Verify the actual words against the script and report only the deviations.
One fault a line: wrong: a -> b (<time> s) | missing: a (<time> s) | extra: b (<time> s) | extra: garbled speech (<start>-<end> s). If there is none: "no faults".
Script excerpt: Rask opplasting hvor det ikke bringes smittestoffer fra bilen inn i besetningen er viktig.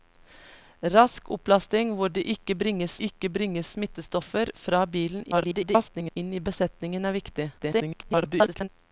extra: ikke bringes (3.1 s)
extra: garbled speech (5.3-6.2 s)
extra: garbled speech (7.6-8.7 s)